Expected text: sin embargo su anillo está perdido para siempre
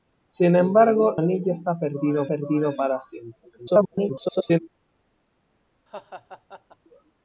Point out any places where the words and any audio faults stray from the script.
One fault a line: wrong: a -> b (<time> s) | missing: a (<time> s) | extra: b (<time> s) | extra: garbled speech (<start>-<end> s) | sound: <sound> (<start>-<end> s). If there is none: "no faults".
missing: su (1.2 s)
extra: perdido (2.3 s)
extra: garbled speech (3.6-4.6 s)
sound: laugh (5.9-6.8 s)